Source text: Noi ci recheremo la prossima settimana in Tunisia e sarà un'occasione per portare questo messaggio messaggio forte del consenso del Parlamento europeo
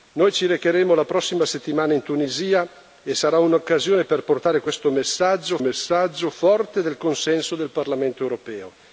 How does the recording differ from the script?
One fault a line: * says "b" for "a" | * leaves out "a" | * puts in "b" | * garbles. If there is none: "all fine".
all fine